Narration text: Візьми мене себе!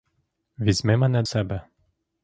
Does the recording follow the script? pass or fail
pass